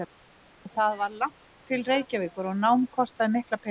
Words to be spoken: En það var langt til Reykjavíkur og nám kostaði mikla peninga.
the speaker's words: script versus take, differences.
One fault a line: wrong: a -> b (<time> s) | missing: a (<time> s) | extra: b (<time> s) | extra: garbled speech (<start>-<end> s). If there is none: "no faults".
no faults